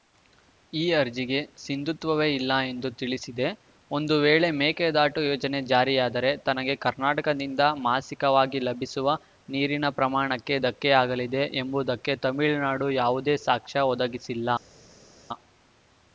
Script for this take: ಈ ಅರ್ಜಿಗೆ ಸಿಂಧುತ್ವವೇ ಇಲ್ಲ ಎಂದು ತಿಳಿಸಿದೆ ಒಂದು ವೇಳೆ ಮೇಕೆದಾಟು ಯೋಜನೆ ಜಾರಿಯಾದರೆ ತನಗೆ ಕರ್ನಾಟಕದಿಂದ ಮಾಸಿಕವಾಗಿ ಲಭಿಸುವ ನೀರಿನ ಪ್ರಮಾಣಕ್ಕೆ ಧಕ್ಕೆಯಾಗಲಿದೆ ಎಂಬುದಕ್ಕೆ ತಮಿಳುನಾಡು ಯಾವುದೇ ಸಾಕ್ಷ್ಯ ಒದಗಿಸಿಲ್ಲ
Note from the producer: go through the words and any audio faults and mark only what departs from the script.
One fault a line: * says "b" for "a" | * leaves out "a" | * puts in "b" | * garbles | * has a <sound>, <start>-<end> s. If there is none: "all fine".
all fine